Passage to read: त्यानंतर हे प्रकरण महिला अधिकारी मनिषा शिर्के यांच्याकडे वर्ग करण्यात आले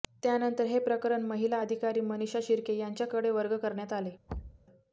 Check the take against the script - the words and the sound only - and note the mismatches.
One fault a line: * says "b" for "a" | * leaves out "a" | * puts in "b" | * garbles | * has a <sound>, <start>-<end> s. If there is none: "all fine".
* has a thud, 4.3-4.7 s